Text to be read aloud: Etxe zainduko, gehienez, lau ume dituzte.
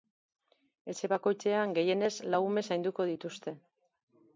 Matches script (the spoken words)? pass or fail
fail